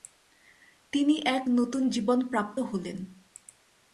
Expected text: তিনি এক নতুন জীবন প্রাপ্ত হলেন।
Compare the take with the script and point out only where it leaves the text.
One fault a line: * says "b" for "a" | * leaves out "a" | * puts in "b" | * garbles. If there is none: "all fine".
all fine